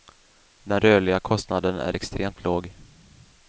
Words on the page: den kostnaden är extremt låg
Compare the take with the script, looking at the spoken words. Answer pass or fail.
fail